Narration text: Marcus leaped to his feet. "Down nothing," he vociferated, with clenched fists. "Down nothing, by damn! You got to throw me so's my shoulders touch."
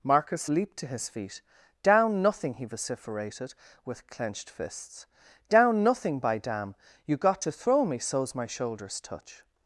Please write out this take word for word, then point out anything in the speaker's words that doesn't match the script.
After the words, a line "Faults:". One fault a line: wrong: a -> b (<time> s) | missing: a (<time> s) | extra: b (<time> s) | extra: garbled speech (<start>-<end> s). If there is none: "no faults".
Marcus leaped to his feet. "Down nothing," he vociferated, with clenched fists. "Down nothing, by damn! You got to throw me so's my shoulders touch."
Faults:
no faults